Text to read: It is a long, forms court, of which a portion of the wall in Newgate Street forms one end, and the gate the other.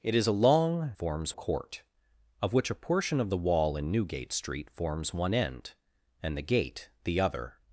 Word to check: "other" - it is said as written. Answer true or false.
true